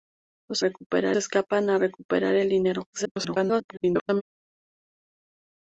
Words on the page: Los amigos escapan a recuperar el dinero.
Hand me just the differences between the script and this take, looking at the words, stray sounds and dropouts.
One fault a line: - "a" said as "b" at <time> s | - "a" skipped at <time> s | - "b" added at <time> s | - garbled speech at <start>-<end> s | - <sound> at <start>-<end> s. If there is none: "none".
- "amigos" said as "recuperar" at 0.6 s
- garbled speech at 2.9-4.2 s